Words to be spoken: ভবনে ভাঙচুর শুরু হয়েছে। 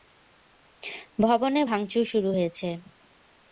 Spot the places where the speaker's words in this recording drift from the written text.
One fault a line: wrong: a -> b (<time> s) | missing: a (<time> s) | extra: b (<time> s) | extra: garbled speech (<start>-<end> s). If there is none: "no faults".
no faults